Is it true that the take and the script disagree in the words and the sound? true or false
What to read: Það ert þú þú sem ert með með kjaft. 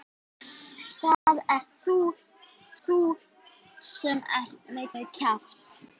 true